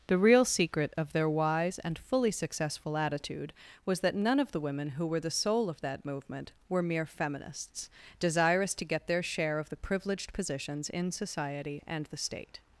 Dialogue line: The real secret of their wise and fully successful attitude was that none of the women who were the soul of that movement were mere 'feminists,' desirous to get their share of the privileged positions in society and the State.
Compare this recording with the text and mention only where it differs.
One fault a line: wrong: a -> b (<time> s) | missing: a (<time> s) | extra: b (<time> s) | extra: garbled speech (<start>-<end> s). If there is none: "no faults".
no faults